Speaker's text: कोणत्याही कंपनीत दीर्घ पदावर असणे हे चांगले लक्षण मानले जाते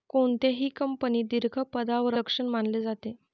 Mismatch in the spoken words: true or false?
true